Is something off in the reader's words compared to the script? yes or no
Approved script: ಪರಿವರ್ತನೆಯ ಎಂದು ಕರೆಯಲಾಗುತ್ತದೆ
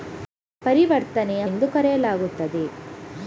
no